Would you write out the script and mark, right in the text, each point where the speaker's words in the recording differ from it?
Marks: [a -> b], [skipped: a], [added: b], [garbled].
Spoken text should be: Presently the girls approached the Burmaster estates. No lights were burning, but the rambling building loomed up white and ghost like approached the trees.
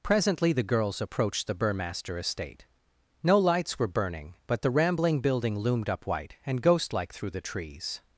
Presently the girls approached the Burmaster [estates. -> estate] No lights were burning, but the rambling building loomed up white and ghost like [approached -> through] the trees.